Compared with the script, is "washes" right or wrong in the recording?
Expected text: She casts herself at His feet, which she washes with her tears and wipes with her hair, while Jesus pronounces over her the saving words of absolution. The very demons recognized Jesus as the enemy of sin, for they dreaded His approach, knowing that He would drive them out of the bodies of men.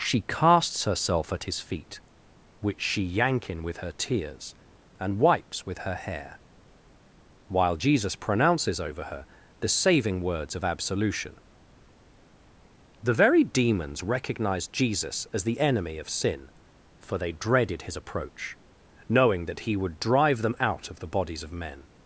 wrong